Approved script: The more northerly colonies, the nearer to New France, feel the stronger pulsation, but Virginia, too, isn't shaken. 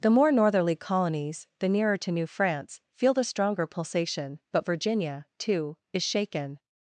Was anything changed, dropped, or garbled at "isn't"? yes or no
yes